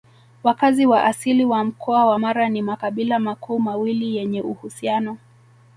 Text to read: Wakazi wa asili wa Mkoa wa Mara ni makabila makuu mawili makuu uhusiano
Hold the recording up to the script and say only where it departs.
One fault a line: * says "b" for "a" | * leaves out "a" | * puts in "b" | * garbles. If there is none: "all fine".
* says "yenye" for "makuu"